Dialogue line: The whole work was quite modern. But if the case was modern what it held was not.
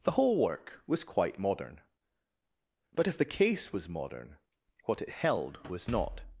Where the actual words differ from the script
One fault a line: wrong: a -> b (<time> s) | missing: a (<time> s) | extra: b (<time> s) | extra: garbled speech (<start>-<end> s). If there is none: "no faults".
no faults